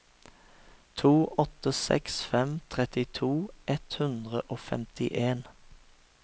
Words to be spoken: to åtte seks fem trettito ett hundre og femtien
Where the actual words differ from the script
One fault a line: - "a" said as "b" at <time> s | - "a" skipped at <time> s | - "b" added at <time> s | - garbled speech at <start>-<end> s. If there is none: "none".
none